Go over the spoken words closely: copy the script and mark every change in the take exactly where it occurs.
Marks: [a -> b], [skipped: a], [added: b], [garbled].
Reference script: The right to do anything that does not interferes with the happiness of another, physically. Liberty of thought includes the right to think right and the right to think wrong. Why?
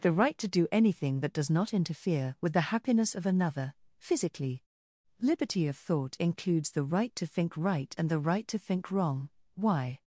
The right to do anything that does not [interferes -> interfere] with the happiness of another, physically. Liberty of thought includes the right to think right and the right to think wrong. Why?